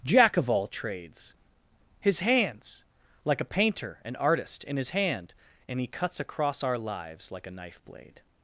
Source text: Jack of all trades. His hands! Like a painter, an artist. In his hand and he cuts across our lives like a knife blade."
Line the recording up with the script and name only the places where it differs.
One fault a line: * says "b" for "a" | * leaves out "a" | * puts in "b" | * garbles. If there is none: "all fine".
all fine